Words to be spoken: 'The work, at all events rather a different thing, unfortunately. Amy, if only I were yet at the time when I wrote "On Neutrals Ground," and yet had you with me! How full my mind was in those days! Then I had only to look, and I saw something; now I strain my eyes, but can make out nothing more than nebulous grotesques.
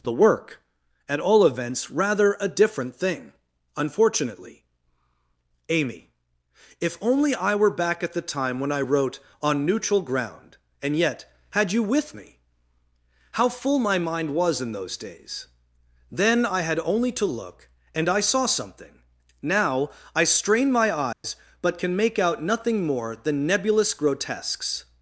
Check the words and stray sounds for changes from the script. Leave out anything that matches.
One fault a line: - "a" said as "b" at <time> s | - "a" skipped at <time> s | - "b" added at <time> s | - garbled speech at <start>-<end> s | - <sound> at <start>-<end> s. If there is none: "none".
- "yet" said as "back" at 7.8 s
- "Neutrals" said as "Neutral" at 9.7 s
- dropout at 21.1-21.2 s